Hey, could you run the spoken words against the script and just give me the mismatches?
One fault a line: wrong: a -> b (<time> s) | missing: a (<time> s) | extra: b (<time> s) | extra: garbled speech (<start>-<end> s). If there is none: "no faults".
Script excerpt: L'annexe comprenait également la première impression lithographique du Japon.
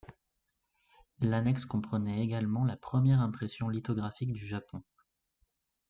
no faults